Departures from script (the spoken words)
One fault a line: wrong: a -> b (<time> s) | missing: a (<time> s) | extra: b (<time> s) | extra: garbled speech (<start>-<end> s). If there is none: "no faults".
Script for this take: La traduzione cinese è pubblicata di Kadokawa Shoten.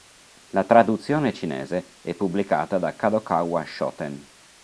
wrong: di -> da (2.8 s)